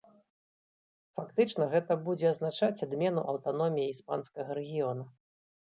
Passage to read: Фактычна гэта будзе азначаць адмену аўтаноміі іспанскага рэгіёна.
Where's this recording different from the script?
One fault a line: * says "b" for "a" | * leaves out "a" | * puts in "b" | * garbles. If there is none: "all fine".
all fine